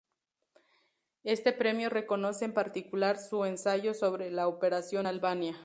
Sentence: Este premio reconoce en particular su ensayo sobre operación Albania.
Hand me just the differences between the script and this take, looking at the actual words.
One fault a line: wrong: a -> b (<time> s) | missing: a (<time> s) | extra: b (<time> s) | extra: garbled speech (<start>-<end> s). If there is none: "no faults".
extra: la (4.3 s)